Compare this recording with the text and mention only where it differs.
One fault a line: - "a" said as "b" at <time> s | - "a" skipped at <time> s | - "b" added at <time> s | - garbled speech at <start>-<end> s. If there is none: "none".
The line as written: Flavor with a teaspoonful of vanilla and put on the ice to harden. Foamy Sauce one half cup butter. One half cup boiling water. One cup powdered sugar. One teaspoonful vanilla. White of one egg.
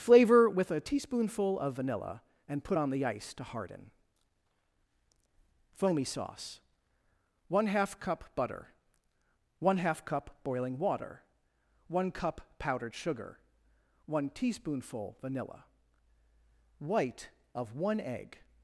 none